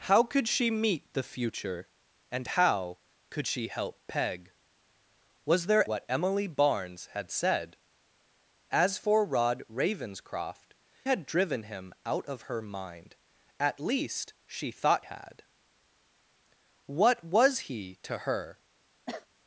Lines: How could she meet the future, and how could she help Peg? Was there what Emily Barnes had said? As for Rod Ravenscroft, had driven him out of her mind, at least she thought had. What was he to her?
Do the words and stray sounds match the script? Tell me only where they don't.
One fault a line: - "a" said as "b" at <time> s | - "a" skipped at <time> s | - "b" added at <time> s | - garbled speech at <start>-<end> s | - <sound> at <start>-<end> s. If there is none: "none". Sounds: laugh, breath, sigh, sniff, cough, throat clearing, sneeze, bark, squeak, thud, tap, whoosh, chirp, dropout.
- cough at 19.1-19.3 s